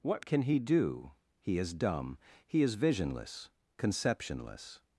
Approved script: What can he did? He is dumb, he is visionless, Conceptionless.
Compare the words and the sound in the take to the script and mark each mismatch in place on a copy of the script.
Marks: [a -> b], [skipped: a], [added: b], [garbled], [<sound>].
What can he [did? -> do] He is dumb, he is visionless, Conceptionless.